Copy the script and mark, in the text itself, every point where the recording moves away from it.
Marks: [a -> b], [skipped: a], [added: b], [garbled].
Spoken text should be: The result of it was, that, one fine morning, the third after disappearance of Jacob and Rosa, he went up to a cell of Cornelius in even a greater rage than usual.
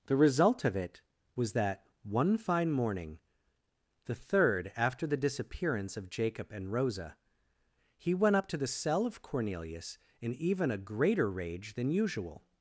The result of it was, that, one fine morning, the third after [added: the] disappearance of Jacob and Rosa, he went up to [a -> the] cell of Cornelius in even a greater rage than usual.